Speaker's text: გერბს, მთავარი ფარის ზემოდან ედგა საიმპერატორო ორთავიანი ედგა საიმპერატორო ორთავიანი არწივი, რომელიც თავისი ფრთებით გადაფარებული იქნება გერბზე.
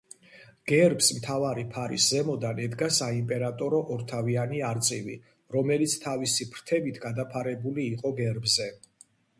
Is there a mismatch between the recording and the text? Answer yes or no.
yes